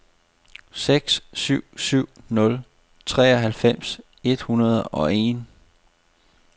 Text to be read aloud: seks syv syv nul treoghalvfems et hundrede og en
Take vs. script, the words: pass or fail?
pass